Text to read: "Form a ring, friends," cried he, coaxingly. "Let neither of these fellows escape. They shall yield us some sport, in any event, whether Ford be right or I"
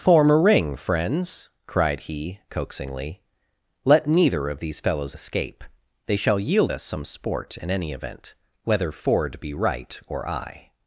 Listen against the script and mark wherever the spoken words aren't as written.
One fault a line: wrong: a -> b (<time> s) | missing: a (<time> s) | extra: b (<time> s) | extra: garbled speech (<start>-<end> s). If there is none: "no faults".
no faults